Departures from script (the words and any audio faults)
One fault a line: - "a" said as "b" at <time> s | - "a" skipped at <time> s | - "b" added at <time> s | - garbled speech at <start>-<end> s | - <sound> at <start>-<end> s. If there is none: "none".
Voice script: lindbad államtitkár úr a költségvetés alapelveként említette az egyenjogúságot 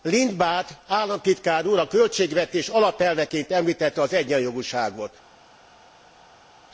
none